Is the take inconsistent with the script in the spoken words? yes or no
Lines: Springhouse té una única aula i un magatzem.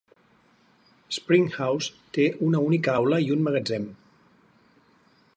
no